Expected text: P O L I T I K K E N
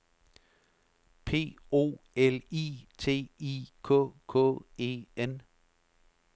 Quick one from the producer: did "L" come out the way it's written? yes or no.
yes